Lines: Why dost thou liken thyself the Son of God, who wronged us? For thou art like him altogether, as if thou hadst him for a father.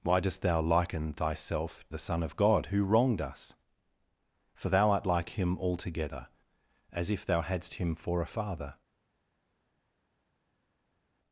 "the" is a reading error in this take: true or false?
false